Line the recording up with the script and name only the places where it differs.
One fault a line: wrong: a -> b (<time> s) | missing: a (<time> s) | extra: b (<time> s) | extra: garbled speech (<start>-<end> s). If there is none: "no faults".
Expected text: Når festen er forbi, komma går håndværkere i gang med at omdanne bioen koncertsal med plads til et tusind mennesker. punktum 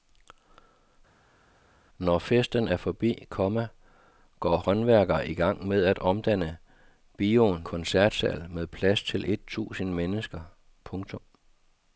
no faults